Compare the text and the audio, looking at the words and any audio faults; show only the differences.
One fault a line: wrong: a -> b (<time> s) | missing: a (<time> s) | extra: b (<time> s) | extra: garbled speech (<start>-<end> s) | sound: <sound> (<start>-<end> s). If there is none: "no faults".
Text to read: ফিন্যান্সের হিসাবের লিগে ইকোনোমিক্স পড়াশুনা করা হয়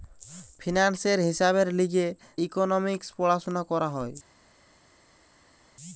no faults